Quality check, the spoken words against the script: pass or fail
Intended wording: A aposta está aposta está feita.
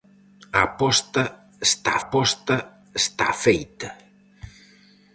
pass